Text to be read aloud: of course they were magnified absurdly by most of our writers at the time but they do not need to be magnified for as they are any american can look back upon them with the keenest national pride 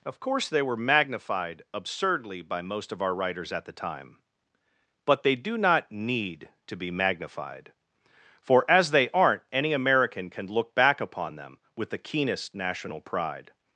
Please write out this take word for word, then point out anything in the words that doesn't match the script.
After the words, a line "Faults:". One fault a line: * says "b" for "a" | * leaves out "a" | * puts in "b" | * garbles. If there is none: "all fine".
of course they were magnified absurdly by most of our writers at the time but they do not need to be magnified for as they aren't any american can look back upon them with the keenest national pride
Faults:
* says "aren't" for "are"